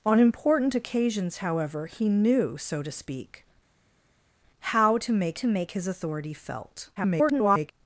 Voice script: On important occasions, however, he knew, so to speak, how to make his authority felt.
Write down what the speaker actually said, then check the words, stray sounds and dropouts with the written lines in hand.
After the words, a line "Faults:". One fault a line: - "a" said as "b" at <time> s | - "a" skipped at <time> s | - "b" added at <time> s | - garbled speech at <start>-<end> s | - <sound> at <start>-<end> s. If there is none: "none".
On important occasions, however, he knew, so to speak, how to make to make his authority felt. [garbled]
Faults:
- "to make" added at 5.3 s
- garbled speech at 7.0-7.7 s